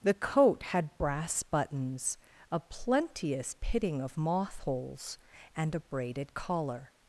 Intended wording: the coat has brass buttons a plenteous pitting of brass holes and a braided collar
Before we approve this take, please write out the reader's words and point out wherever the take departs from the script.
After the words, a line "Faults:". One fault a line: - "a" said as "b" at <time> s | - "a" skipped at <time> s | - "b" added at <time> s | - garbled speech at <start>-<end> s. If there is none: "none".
the coat had brass buttons a plenteous pitting of moth holes and a braided collar
Faults:
- "has" said as "had" at 0.6 s
- "brass" said as "moth" at 4.2 s